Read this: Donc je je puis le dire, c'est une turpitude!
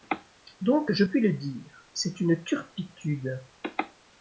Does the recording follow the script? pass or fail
fail